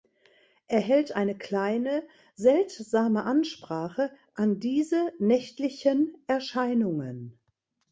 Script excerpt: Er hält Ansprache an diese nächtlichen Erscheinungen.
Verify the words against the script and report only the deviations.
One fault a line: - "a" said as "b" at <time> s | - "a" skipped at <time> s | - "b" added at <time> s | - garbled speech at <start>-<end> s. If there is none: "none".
- "eine kleine seltsame" added at 1.1 s